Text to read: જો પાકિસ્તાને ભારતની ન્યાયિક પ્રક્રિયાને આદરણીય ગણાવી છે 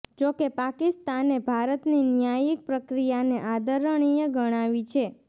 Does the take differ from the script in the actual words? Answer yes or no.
yes